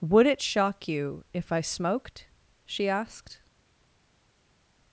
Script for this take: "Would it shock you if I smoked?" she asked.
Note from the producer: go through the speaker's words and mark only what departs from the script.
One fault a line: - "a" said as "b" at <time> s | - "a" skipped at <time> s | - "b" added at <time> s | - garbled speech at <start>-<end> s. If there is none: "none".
none